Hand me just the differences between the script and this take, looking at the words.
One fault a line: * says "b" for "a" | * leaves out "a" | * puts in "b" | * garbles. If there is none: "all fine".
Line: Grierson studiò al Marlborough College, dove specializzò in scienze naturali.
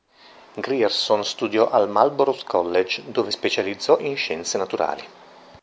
all fine